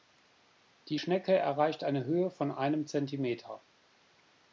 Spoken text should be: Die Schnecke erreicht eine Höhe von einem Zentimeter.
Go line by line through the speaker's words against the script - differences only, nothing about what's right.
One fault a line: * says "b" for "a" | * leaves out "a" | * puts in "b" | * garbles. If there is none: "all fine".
all fine